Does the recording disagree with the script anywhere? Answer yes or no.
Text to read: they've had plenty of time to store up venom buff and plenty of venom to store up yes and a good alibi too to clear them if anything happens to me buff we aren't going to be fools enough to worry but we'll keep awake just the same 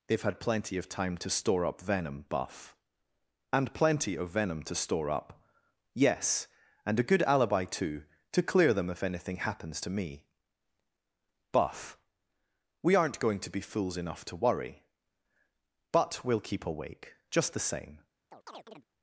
no